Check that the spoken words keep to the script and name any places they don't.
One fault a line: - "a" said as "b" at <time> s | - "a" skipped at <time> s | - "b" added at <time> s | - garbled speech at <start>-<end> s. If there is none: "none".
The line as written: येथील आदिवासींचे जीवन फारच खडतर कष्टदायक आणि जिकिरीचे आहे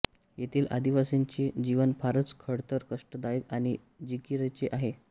none